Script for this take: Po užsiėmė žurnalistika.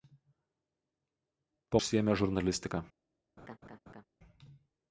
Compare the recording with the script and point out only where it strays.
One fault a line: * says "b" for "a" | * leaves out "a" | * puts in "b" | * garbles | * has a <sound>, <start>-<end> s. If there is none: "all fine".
* has a laugh, 3.4-4.0 s